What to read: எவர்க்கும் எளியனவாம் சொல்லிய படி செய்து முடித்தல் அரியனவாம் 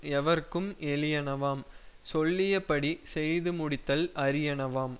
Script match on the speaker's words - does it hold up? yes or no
yes